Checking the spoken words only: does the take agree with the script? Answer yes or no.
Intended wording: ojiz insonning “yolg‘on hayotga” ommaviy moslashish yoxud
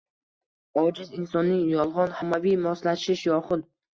no